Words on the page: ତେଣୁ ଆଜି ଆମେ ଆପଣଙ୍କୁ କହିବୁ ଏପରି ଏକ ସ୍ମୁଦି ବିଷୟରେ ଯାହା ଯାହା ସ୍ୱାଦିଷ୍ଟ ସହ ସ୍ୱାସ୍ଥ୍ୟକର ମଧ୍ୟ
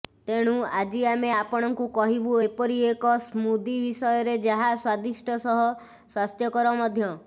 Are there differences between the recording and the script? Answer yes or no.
yes